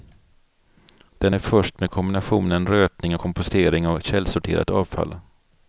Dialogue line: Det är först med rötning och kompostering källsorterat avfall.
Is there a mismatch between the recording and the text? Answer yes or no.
yes